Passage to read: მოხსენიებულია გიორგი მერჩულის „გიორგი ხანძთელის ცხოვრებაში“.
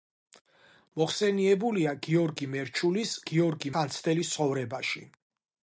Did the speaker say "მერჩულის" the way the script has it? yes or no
yes